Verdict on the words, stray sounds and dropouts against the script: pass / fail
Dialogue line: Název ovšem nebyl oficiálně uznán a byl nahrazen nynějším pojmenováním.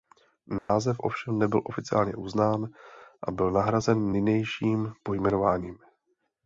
fail